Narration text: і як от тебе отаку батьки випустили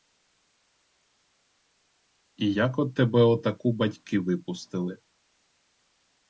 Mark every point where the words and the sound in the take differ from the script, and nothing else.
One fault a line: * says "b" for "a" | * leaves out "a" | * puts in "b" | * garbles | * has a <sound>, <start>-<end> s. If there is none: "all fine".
all fine